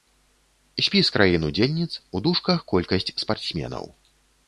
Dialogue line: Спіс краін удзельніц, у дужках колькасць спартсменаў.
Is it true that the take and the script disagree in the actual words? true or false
false